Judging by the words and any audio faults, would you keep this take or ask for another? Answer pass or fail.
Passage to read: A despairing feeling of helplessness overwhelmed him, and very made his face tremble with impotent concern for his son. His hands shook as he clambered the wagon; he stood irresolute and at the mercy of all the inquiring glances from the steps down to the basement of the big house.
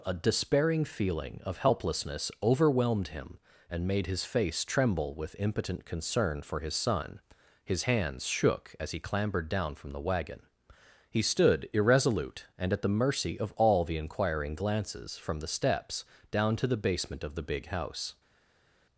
fail